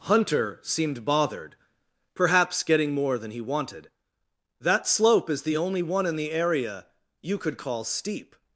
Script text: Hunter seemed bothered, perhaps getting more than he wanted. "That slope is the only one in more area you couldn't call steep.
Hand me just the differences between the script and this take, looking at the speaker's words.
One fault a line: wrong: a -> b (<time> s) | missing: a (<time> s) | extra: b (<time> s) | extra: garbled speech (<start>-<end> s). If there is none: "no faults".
wrong: more -> the (6.2 s)
wrong: couldn't -> could (7.4 s)